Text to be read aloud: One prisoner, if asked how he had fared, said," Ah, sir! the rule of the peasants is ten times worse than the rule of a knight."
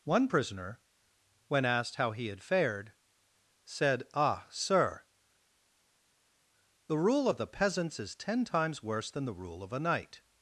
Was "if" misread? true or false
true